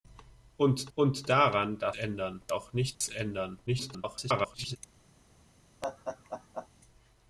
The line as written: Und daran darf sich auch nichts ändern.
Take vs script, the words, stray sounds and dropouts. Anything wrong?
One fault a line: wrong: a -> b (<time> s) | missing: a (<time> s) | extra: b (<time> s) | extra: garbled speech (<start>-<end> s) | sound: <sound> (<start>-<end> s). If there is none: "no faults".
extra: und (1.0 s)
wrong: sich -> ändern (1.9 s)
sound: dropout (2.9-3.0 s)
extra: garbled speech (3.7-4.8 s)
sound: laugh (5.8-6.7 s)